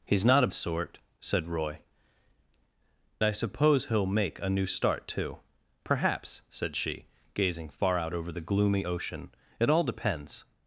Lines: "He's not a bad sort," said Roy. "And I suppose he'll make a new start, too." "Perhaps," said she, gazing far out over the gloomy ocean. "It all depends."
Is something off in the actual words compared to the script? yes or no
yes